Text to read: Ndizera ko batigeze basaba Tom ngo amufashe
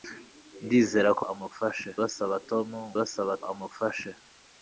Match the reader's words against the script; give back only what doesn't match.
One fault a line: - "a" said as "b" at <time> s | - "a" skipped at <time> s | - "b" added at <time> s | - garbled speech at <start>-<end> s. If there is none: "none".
- "batigeze" said as "amufashe" at 1.3 s
- "ngo" said as "basaba" at 3.0 s